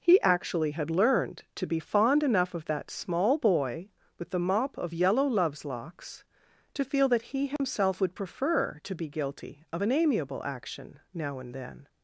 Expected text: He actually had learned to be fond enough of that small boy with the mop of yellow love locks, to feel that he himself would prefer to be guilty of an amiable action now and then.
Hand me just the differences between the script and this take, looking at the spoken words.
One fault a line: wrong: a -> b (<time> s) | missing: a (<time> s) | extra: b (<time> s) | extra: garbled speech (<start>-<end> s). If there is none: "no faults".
wrong: love -> loves (5.3 s)